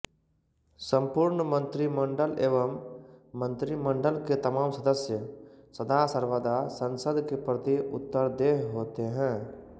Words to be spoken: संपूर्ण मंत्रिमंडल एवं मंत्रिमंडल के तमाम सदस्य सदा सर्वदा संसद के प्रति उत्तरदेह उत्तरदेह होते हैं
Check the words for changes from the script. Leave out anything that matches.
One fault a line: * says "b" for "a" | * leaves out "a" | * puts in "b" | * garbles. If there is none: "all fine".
* leaves out "उत्तरदेह"